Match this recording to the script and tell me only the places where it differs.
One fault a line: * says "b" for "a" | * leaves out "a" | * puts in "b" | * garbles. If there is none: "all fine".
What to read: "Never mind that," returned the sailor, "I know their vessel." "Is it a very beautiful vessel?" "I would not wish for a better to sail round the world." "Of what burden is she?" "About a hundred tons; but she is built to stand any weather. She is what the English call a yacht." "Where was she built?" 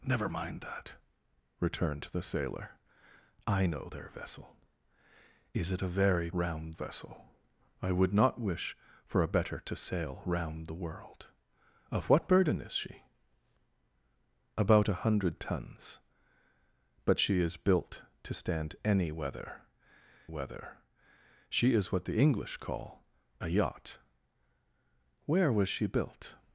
* says "round" for "beautiful"
* puts in "weather"